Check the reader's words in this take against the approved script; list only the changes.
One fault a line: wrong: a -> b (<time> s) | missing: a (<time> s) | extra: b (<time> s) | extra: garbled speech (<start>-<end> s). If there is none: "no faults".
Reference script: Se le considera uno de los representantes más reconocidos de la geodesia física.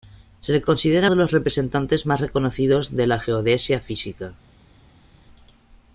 missing: uno (1.1 s)